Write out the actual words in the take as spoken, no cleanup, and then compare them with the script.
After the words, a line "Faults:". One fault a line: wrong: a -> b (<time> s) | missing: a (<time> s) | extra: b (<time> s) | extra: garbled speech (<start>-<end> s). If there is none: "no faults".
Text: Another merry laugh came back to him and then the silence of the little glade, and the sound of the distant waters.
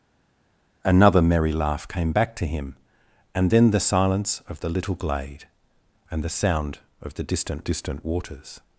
Another merry laugh came back to him and then the silence of the little glade, and the sound of the distant distant waters.
Faults:
extra: distant (7.6 s)